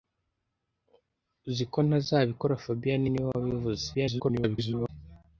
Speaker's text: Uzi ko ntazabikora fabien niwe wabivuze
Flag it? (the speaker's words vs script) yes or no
yes